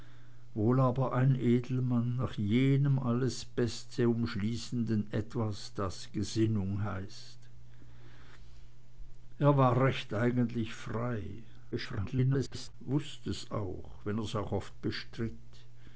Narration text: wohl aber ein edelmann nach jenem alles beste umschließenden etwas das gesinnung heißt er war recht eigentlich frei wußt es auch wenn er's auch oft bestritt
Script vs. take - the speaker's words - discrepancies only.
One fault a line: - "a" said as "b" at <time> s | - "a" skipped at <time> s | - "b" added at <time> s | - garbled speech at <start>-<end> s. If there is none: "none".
- garbled speech at 11.7-12.7 s